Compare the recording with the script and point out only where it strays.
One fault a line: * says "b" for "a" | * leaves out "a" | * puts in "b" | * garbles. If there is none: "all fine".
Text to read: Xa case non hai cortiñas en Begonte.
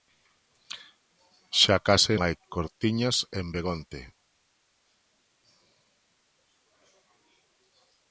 * leaves out "non"